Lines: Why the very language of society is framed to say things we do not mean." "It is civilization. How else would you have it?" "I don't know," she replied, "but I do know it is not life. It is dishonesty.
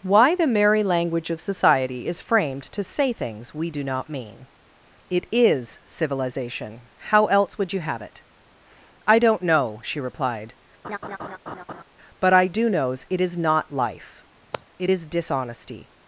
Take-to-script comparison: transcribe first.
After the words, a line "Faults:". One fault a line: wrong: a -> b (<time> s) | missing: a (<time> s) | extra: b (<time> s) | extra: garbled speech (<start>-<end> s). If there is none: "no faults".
Why the merry language of society is framed to say things we do not mean." "It is civilization. How else would you have it?" "I don't know," she replied, "but I do knows it is not life. It is dishonesty.
Faults:
wrong: very -> merry (0.5 s)
wrong: know -> knows (12.7 s)